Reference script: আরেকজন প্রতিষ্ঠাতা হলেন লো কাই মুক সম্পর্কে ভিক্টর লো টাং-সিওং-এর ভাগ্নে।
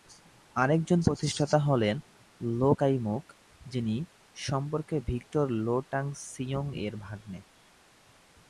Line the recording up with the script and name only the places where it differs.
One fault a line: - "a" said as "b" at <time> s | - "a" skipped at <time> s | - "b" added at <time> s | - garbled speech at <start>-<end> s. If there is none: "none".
- "যিনি" added at 3.7 s